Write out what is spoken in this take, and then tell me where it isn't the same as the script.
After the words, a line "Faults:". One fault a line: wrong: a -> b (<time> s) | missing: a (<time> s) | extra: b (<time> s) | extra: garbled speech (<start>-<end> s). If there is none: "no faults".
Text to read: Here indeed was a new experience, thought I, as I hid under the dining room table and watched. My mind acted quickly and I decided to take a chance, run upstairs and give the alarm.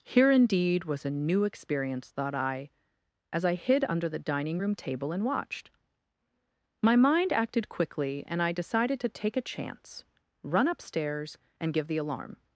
Here indeed was a new experience, thought I, as I hid under the dining room table and watched. My mind acted quickly and I decided to take a chance, run upstairs and give the alarm.
Faults:
no faults